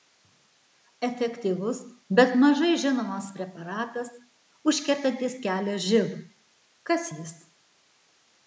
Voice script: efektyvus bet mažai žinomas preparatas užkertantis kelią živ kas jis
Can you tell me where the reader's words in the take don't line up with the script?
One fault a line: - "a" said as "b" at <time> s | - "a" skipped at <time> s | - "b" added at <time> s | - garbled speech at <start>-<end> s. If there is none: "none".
none